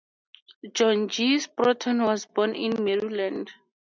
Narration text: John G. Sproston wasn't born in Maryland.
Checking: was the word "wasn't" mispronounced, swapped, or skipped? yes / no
yes